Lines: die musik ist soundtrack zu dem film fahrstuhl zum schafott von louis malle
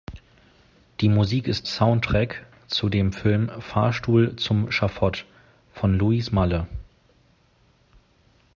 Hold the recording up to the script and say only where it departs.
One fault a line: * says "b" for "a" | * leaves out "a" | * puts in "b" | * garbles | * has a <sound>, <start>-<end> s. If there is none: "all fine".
all fine